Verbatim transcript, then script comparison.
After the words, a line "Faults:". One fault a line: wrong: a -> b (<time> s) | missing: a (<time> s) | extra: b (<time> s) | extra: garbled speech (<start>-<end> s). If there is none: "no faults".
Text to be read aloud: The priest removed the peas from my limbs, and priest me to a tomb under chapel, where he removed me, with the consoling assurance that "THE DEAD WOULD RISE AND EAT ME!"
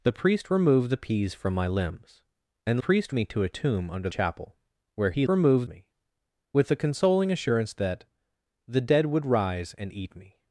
The priest removed the peas from my limbs, and priest me to a tomb under chapel, where he removed me, with the consoling assurance that "THE DEAD WOULD RISE AND EAT ME!"
Faults:
no faults